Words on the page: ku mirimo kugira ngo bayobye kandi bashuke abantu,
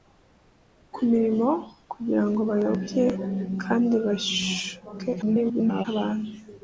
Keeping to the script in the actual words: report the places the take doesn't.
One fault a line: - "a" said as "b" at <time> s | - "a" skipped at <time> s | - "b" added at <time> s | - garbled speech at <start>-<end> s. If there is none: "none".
- garbled speech at 5.2-5.9 s